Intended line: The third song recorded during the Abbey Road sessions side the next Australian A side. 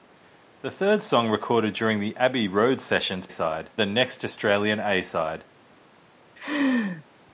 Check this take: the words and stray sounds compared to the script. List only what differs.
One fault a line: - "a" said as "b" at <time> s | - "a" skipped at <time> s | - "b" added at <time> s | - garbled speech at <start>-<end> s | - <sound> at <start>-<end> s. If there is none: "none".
- laugh at 6.4-7.0 s